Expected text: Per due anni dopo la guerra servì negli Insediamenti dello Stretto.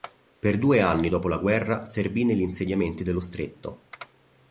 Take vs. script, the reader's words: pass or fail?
pass